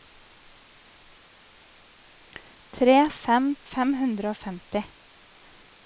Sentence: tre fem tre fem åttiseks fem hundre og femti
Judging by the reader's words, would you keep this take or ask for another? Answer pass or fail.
fail